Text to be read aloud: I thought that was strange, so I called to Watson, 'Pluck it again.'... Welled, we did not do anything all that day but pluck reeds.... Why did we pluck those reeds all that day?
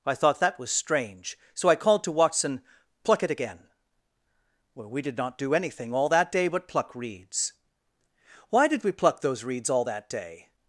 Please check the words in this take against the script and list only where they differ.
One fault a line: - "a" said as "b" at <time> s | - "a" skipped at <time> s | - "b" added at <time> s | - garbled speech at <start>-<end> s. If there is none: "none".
- "Welled" said as "Well" at 4.7 s